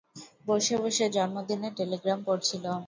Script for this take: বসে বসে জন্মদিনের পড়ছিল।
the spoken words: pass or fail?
fail